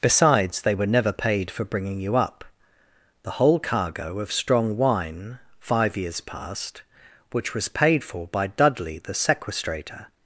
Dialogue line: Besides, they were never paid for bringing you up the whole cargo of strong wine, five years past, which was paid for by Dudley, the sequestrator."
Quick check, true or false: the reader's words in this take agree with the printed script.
true